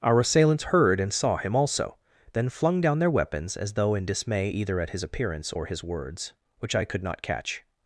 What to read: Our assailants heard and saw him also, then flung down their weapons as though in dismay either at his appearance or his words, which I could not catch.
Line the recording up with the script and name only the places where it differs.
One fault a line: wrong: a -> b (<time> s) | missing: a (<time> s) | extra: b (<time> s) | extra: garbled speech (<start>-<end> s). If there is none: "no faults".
no faults